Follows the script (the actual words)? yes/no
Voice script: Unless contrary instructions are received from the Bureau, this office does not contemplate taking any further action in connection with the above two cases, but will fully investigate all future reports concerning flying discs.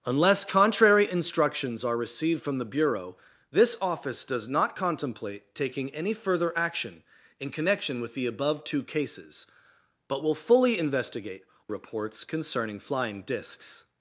no